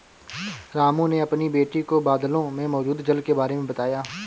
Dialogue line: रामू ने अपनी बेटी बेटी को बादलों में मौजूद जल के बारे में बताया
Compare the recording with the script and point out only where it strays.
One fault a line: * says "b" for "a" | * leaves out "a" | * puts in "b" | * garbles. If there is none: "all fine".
* leaves out "बेटी"